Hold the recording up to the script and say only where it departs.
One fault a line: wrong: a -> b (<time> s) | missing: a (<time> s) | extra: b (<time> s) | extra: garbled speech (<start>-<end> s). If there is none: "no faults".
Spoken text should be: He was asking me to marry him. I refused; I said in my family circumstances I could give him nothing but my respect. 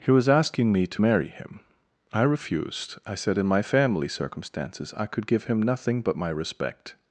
no faults